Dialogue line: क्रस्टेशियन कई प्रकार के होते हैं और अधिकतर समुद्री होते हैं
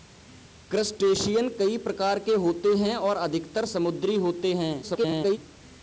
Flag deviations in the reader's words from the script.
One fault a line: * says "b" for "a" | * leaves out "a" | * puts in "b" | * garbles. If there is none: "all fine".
* garbles